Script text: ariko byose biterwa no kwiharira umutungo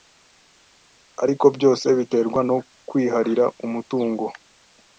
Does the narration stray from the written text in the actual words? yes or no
no